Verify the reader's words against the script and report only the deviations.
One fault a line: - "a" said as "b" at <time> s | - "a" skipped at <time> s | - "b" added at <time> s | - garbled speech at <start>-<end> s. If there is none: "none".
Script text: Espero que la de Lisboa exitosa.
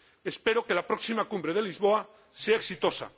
- "próxima Cumbre" added at 0.9 s
- "sea" added at 2.3 s